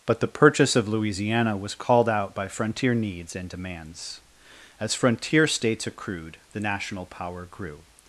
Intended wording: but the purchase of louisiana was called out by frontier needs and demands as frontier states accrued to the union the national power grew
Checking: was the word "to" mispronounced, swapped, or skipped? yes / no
yes